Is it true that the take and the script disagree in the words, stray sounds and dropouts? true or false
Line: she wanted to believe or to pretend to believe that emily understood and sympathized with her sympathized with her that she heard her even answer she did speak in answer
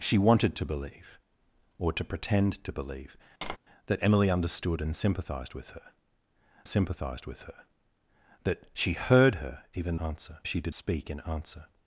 true